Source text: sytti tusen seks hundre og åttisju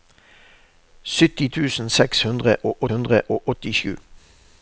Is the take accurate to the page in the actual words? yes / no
no